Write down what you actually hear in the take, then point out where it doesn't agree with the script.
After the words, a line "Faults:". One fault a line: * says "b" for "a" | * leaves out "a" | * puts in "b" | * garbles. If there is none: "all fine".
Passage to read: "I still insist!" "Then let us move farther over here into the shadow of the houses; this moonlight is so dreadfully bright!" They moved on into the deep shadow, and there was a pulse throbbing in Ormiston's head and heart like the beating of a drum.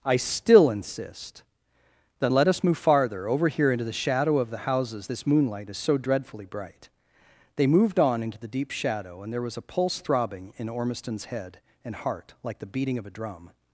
"I still insist!" "Then let us move farther over here into the shadow of the houses; this moonlight is so dreadfully bright!" They moved on into the deep shadow, and there was a pulse throbbing in Ormiston's head and heart like the beating of a drum.
Faults:
all fine